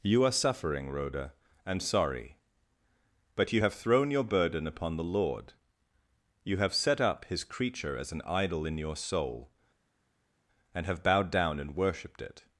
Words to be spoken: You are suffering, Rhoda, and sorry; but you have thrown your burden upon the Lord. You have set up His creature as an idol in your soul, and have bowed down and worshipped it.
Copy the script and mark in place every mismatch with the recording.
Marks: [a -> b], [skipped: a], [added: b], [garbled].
You are suffering, Rhoda, and sorry; but you have thrown your burden upon the Lord. You have set up His creature as an idol in your soul, and have bowed down and worshipped it.